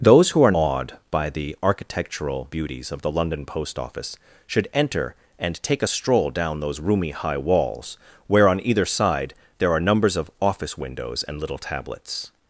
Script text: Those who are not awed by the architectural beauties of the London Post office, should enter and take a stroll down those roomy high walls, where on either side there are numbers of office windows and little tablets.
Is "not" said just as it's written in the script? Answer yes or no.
no